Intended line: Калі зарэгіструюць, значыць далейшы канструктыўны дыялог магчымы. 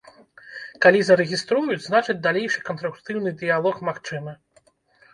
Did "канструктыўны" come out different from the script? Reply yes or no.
no